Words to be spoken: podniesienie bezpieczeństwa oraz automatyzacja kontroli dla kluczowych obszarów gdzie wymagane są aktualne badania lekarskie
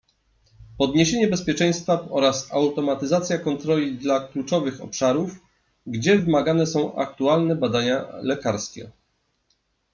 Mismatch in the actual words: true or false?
false